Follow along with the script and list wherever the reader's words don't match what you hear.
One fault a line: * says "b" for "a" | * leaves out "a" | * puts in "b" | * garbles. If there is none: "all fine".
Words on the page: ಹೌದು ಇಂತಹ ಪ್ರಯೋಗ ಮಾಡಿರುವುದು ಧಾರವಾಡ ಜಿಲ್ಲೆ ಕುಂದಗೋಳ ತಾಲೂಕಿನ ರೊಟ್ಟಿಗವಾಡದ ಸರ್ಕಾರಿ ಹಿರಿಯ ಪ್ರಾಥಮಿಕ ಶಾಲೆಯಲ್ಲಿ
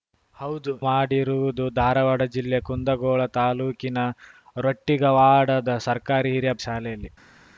* leaves out "ಇಂತಹ ಪ್ರಯೋಗ"
* leaves out "ಪ್ರಾಥಮಿಕ"